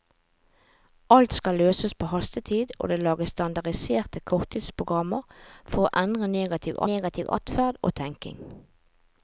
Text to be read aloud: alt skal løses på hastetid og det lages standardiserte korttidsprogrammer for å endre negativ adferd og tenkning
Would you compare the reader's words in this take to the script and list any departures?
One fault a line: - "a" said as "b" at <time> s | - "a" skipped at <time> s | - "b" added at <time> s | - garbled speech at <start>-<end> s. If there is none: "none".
- "negativ" added at 6.9 s